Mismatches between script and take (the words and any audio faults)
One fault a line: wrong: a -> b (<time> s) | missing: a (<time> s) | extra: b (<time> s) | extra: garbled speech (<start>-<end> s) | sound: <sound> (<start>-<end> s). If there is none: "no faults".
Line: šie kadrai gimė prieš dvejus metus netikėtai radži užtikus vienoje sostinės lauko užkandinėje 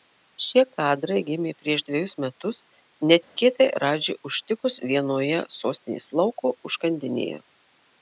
sound: dropout (3.2-3.4 s)